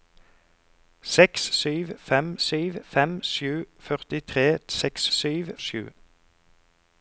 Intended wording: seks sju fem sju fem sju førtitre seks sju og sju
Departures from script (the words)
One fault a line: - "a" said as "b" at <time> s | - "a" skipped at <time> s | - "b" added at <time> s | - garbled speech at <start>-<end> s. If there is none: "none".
none